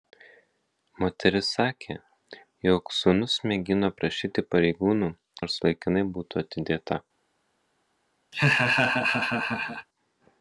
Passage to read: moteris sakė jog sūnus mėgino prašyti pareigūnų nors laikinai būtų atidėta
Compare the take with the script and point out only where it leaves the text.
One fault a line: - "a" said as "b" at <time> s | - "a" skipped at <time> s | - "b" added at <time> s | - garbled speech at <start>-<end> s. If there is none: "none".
none